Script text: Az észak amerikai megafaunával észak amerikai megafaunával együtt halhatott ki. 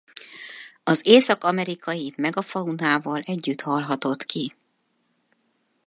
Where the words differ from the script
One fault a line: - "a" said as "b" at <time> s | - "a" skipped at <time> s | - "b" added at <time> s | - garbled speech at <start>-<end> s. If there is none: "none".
- "észak amerikai megafaunával" skipped at 3.2 s